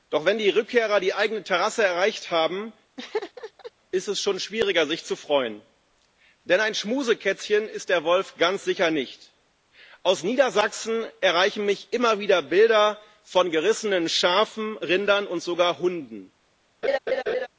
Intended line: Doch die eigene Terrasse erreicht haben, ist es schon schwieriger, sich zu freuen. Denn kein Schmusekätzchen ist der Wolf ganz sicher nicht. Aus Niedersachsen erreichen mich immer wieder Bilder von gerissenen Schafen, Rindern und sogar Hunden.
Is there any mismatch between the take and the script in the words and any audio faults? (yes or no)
yes